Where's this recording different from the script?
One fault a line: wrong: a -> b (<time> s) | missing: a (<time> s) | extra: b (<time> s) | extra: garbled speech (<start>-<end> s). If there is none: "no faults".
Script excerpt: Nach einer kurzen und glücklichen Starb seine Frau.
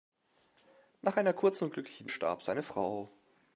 no faults